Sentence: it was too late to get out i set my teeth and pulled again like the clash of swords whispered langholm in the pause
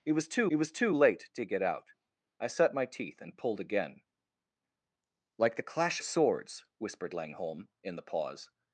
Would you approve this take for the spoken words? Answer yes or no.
no